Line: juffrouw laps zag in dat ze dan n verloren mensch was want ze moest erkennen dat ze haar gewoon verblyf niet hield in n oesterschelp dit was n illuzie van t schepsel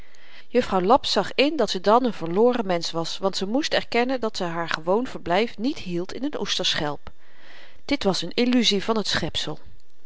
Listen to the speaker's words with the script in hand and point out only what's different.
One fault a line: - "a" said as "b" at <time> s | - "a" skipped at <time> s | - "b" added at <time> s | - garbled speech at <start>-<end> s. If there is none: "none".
none